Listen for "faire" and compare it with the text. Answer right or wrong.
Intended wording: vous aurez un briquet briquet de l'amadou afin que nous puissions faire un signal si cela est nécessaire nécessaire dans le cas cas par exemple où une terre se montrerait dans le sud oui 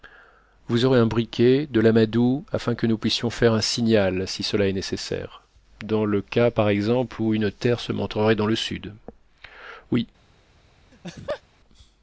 right